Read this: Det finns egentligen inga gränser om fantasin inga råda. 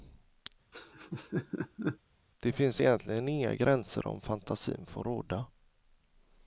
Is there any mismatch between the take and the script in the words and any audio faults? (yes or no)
yes